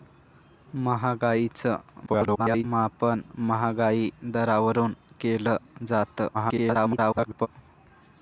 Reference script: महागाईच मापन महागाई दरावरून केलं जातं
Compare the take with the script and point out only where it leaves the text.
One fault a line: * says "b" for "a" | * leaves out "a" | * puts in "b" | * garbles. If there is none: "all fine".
* garbles
* garbles